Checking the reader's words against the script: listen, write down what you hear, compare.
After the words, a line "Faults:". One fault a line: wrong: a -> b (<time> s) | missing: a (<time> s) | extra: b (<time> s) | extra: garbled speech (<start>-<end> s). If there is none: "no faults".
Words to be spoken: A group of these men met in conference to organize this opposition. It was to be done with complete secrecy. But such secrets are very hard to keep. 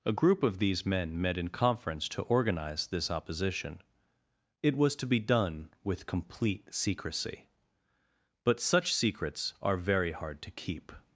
A group of these men met in conference to organize this opposition. It was to be done with complete secrecy. But such secrets are very hard to keep.
Faults:
no faults